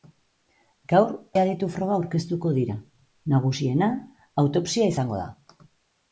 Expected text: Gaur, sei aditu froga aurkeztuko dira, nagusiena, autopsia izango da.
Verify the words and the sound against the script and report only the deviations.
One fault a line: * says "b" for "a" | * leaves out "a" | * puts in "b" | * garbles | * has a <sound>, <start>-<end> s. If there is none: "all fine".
* leaves out "sei"